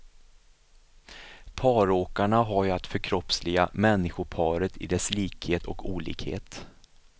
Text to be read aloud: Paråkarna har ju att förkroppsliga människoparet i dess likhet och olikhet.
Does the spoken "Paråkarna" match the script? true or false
true